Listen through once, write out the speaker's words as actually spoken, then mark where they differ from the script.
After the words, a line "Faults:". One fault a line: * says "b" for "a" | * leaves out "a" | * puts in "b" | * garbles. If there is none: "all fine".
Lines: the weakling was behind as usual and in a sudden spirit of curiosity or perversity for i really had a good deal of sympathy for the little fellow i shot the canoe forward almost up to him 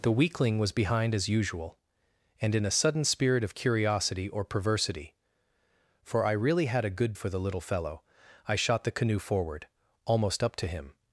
the weakling was behind as usual and in a sudden spirit of curiosity or perversity for i really had a good for the little fellow i shot the canoe forward almost up to him
Faults:
* leaves out "deal of sympathy"